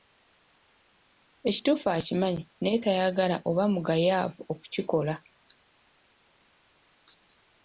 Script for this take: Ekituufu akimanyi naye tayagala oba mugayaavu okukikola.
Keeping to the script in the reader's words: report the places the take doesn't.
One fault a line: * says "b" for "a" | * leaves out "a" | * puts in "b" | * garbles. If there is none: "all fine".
all fine